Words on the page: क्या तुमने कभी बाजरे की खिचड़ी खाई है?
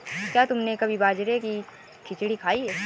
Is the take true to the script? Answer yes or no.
yes